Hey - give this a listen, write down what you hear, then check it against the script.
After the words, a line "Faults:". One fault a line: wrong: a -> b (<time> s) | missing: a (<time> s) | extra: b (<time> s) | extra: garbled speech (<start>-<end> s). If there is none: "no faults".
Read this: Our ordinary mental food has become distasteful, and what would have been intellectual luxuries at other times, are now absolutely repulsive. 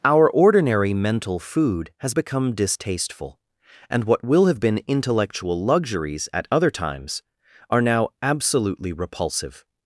Our ordinary mental food has become distasteful, and what will have been intellectual luxuries at other times, are now absolutely repulsive.
Faults:
wrong: would -> will (4.2 s)